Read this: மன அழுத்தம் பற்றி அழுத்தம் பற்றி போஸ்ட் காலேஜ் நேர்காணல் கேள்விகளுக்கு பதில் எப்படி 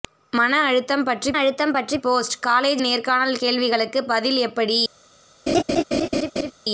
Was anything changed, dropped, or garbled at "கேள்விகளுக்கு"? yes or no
no